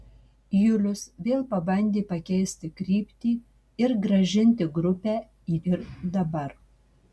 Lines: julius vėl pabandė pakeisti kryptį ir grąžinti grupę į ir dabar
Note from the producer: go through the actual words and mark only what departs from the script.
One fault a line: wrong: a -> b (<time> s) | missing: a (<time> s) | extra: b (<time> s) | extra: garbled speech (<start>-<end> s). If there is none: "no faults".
no faults